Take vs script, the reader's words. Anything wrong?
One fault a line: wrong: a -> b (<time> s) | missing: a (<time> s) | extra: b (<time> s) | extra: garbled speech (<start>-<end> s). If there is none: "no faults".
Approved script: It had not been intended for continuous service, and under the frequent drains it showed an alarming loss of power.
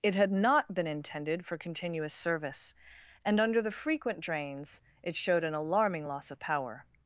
no faults